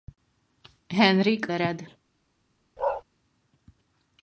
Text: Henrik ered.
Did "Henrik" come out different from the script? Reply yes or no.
no